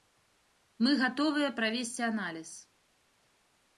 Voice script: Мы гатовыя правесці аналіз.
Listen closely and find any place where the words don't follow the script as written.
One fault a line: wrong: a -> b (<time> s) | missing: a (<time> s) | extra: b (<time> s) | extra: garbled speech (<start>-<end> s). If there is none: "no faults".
no faults